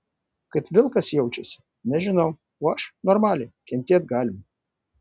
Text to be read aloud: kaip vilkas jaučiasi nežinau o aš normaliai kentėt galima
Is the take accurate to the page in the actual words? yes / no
yes